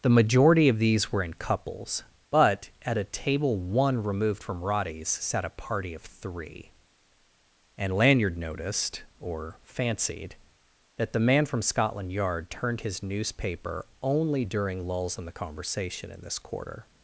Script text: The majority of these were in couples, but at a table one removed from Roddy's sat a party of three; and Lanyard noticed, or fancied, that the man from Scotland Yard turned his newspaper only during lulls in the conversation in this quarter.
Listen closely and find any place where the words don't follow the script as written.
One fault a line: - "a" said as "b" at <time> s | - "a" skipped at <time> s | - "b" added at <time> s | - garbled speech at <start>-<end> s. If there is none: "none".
none